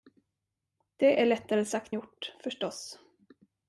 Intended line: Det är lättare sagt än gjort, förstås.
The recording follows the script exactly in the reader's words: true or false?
false